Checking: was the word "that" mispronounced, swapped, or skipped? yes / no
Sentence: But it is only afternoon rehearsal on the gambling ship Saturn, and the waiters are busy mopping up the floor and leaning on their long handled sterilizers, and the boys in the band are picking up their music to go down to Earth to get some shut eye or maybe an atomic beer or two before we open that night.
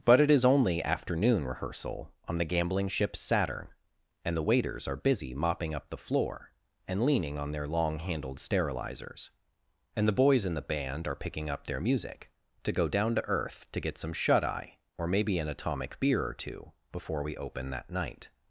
no